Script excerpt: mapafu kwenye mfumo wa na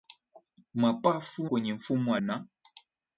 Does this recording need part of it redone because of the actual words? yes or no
no